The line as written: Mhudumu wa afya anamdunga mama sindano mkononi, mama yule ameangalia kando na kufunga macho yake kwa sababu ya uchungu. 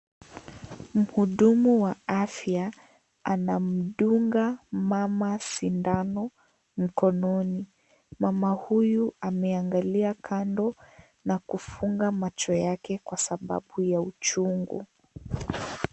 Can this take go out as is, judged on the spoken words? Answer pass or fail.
fail